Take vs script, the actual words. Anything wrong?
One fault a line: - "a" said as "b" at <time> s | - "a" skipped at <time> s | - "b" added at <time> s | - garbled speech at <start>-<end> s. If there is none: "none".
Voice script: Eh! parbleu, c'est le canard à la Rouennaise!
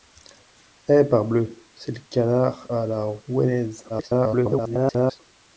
- garbled speech at 3.9-5.2 s